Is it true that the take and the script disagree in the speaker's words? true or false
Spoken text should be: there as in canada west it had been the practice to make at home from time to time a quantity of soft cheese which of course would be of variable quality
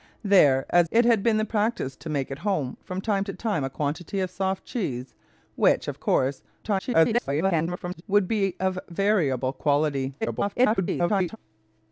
true